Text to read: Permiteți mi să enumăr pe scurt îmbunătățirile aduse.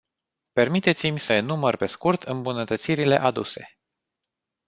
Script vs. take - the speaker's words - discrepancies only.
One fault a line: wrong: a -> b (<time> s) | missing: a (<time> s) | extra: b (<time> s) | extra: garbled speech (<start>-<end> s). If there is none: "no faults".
no faults